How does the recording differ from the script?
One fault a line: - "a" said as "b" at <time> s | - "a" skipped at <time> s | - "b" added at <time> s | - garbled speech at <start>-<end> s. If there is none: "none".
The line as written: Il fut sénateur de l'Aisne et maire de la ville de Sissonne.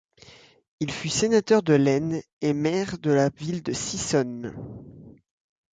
none